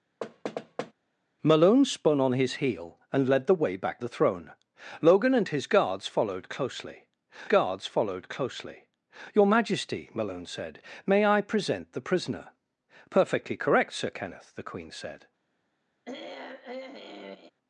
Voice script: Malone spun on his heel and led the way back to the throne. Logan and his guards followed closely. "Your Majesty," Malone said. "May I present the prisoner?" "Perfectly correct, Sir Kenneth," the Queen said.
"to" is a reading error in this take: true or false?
true